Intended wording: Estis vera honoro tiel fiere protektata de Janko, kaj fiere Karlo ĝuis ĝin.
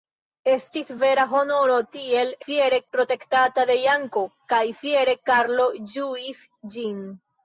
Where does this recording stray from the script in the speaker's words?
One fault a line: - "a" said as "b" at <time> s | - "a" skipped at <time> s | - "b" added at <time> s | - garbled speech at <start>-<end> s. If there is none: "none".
none